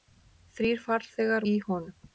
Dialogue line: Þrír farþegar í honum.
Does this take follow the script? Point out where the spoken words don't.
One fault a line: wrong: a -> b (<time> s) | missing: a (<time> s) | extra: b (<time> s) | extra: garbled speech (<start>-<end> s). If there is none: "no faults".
no faults